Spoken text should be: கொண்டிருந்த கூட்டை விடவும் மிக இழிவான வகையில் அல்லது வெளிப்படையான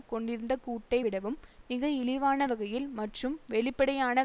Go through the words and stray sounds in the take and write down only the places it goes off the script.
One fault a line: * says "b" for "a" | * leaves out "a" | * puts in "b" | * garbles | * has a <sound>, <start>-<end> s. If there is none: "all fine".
* says "மற்றும்" for "அல்லது"